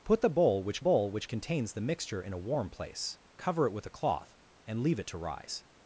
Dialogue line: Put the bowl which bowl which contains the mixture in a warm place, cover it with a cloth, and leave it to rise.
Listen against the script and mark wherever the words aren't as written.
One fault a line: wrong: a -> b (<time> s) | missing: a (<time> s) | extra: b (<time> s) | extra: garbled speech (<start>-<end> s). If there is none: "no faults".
no faults